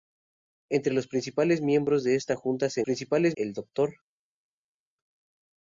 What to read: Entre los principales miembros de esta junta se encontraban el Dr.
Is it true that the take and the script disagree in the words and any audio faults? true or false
true